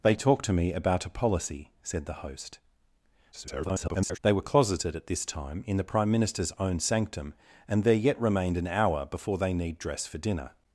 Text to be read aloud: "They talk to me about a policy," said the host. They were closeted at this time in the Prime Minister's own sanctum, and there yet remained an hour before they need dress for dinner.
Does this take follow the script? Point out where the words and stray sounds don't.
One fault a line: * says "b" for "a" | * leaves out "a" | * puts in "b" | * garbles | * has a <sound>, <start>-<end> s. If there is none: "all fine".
* garbles